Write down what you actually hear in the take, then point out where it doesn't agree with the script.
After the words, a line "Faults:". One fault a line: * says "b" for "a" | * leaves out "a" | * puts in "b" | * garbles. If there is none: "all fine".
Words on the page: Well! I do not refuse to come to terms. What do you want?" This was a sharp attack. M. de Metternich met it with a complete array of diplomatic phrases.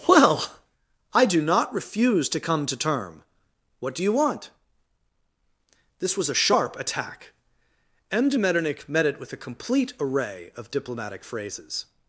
Well! I do not refuse to come to term. What do you want?" This was a sharp attack. M. de Metternich met it with a complete array of diplomatic phrases.
Faults:
* says "term" for "terms"